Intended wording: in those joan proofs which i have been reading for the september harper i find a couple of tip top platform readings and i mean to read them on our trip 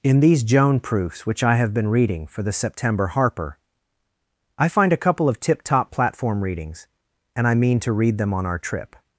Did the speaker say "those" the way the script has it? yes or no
no